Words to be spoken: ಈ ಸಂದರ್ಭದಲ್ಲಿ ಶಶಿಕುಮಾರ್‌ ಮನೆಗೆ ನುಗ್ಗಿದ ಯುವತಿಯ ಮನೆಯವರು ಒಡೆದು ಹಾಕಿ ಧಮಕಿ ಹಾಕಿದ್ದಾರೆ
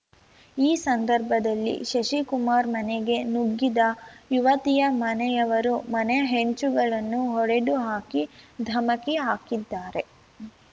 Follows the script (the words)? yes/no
no